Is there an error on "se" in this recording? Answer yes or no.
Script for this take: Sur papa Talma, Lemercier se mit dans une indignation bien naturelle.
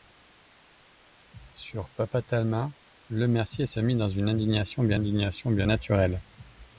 no